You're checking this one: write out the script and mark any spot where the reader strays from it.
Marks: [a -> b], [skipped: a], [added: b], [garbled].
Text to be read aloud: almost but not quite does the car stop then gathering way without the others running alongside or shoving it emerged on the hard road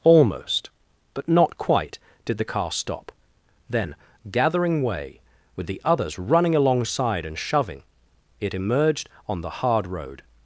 almost but not quite [does -> did] the car stop then gathering way [without -> with] the others running alongside [or -> and] shoving it emerged on the hard road